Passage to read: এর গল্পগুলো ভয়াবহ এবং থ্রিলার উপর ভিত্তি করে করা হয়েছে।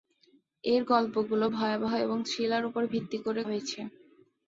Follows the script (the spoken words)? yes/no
no